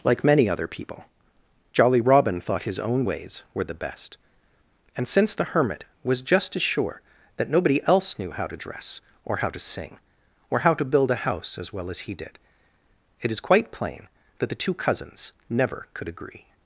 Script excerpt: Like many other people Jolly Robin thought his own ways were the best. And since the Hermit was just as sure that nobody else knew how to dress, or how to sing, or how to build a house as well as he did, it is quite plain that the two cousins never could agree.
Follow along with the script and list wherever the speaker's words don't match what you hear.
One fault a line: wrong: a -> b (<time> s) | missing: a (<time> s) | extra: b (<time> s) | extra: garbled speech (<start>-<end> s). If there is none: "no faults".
no faults